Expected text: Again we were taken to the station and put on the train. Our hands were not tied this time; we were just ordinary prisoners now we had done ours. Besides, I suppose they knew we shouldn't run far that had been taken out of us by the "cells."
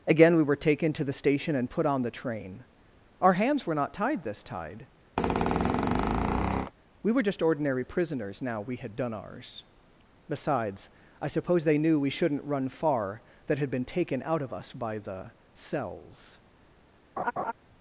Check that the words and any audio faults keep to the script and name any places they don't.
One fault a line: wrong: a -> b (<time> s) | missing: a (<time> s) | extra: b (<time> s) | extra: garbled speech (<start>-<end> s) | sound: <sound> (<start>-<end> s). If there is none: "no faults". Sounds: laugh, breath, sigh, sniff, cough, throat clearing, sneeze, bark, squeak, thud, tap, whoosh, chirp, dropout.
wrong: time -> tide (4.4 s)
sound: squeak (5.2-6.7 s)
sound: laugh (17.2-17.5 s)